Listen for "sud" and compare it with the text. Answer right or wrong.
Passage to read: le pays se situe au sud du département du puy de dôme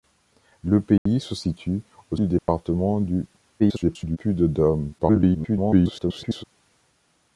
wrong